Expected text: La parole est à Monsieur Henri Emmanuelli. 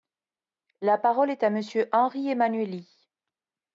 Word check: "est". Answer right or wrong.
right